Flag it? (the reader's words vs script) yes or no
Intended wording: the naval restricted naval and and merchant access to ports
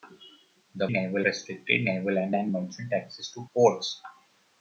no